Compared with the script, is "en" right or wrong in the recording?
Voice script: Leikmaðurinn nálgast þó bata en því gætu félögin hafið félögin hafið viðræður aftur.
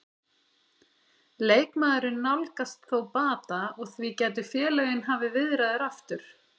wrong